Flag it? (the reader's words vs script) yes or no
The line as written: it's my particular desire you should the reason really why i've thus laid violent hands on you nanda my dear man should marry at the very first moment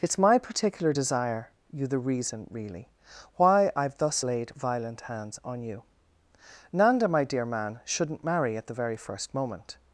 yes